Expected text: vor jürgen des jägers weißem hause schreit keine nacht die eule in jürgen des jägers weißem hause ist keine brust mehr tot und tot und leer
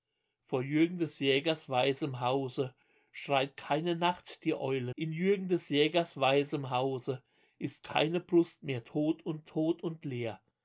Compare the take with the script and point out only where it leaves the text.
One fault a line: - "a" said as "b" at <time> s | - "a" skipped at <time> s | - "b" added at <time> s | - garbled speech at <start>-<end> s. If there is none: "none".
none